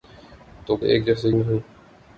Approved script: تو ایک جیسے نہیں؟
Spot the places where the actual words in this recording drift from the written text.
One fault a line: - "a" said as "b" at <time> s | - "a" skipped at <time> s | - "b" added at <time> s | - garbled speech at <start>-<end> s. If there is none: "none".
none